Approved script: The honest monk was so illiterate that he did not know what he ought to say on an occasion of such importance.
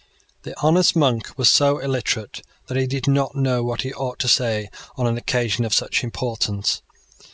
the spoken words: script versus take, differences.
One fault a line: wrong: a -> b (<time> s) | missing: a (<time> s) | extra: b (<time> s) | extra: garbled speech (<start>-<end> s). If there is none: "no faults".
no faults